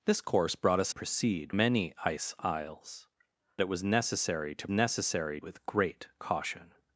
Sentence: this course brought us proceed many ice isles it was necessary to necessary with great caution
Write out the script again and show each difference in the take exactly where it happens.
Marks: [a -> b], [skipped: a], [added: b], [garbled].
this course brought us proceed many ice isles it was necessary to necessary with great caution